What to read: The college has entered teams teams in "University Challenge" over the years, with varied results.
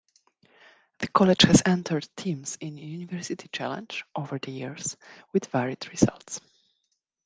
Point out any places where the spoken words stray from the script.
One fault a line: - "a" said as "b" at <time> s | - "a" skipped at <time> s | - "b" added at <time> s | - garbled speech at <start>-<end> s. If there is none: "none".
- "teams" skipped at 2.6 s